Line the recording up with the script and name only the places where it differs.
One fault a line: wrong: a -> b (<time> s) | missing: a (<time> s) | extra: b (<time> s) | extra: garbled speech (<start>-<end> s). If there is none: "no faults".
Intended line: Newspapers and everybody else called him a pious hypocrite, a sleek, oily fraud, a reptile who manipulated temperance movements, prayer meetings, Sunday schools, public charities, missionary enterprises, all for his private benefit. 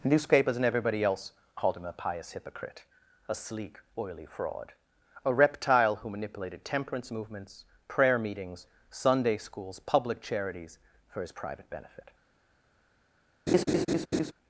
missing: missionary enterprises all (10.8 s)